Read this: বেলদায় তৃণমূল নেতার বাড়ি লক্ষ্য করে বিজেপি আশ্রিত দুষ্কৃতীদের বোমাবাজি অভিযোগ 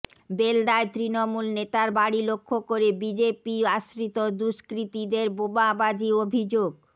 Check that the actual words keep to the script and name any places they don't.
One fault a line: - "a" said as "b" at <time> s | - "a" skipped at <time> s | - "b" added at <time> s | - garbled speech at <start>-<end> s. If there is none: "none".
none